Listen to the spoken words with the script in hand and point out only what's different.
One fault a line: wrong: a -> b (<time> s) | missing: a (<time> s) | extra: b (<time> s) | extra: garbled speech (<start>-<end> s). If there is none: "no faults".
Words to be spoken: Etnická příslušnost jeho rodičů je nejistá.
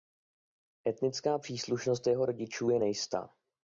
no faults